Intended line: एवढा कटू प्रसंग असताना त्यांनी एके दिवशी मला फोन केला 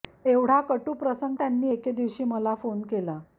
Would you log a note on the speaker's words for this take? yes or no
yes